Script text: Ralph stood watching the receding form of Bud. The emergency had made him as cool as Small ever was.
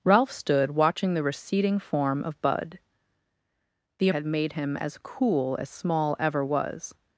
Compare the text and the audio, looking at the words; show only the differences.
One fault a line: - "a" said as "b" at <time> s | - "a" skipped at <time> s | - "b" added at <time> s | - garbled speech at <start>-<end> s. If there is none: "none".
- "emergency" skipped at 4.1 s